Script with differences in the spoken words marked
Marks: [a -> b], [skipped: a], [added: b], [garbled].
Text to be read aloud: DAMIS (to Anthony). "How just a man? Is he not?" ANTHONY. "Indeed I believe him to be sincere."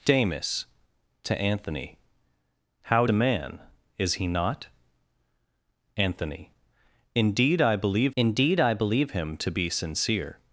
DAMIS (to Anthony). "How [skipped: just] a man? Is he not?" ANTHONY. "Indeed I believe [added: indeed I believe] him to be sincere."